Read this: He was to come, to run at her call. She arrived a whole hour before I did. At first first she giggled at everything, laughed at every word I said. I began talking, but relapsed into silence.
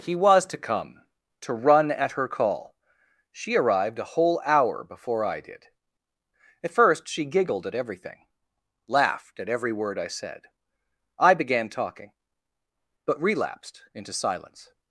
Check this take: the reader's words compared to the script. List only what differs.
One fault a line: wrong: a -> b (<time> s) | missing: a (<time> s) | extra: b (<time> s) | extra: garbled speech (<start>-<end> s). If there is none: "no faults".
missing: first (7.1 s)